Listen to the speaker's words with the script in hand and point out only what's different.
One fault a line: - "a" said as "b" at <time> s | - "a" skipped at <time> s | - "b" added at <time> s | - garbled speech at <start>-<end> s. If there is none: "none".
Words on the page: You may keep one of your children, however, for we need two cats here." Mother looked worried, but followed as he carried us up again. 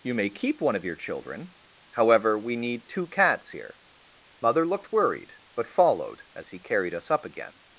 - "for" skipped at 2.4 s